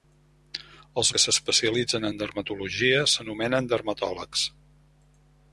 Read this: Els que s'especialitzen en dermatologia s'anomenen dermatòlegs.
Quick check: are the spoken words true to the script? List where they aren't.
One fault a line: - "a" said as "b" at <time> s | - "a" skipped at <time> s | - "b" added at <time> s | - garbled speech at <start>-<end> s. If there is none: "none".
none